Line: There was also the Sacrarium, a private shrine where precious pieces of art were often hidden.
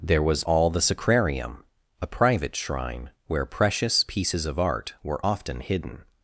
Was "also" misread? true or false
true